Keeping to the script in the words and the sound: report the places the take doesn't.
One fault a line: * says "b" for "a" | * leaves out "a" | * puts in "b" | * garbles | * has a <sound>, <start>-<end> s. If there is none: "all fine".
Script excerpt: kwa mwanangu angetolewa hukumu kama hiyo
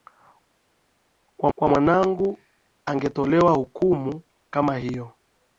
* puts in "kwa"